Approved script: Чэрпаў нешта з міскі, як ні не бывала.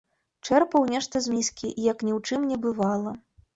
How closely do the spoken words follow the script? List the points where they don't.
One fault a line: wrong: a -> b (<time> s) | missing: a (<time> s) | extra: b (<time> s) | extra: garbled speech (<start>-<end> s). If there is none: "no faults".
extra: ў чым (2.2 s)